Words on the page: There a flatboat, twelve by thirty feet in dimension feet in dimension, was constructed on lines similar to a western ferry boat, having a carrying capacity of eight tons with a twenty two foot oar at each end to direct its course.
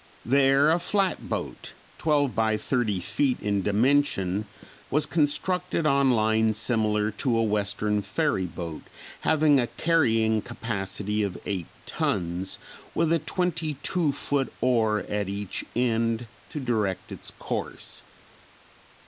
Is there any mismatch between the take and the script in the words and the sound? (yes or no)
yes